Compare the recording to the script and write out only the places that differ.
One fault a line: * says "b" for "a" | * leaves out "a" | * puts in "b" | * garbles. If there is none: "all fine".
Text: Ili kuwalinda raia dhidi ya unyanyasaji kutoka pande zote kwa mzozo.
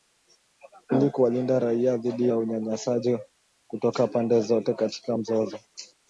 * says "katika" for "kwa"